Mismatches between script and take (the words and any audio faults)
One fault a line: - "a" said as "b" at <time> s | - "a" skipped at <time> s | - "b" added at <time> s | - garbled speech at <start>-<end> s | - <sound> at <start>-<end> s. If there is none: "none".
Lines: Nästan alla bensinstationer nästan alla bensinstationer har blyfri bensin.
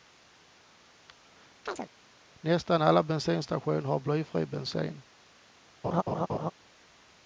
- chirp at 1.7-1.9 s
- "nästan alla bensinstationer" skipped at 3.8 s
- laugh at 5.8-6.5 s